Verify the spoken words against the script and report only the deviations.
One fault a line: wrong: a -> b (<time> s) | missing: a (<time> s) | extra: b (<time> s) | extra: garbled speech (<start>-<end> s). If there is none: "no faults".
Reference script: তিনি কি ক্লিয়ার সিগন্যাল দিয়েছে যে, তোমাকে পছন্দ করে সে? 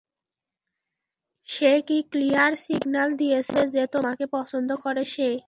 wrong: তিনি -> সে (1.5 s)